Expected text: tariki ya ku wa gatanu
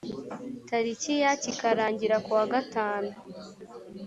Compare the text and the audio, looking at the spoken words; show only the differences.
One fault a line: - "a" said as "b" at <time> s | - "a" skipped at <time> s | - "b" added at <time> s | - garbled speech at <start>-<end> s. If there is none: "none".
- "kikarangira" added at 1.4 s